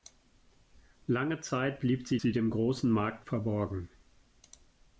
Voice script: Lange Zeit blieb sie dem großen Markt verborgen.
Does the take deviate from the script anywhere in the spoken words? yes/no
yes